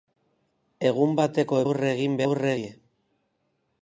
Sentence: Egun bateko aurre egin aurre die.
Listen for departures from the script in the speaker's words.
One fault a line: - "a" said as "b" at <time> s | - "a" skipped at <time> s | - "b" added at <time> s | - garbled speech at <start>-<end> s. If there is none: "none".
none